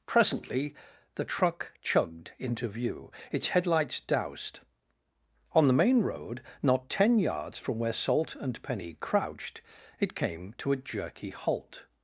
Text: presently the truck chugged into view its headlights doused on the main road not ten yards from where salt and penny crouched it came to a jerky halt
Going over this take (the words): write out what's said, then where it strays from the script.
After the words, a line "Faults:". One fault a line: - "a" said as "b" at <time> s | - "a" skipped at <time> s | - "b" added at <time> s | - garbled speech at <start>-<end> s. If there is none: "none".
presently the truck chugged into view its headlights doused on the main road not ten yards from where salt and penny crouched it came to a jerky halt
Faults:
none